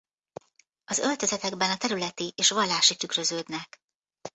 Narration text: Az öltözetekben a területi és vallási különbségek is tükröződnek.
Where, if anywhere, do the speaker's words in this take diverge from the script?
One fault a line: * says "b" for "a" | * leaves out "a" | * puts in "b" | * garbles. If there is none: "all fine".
* leaves out "különbségek is"